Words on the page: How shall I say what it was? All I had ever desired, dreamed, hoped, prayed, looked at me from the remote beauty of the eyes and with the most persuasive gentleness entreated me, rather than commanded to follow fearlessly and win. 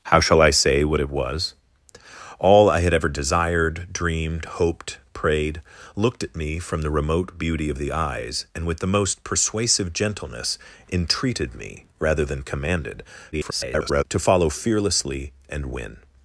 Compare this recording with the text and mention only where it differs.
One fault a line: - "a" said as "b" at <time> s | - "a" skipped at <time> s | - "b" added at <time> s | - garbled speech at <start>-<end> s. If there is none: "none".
- garbled speech at 13.3-14.0 s